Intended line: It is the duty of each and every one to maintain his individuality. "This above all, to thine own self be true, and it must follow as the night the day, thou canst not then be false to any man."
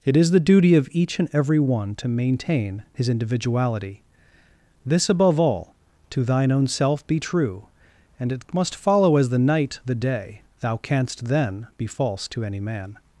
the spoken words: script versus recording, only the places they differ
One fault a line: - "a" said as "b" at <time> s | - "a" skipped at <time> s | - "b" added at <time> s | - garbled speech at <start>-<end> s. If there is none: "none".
- "not" skipped at 11.3 s